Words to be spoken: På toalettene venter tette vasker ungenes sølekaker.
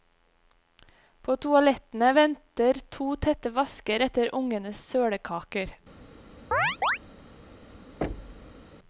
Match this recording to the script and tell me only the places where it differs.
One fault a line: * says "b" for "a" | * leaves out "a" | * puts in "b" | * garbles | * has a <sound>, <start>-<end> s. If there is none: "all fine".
* puts in "to"
* puts in "etter"
* has a chirp, 6.5-7.0 s
* has a thud, 8.0-8.7 s